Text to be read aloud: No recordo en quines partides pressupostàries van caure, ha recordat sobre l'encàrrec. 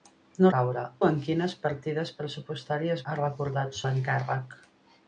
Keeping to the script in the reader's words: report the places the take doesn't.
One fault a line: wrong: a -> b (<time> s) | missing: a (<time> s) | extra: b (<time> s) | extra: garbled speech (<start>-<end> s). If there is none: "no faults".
wrong: recordo -> caure (0.5 s)
missing: van caure (3.0 s)
missing: sobre (3.8 s)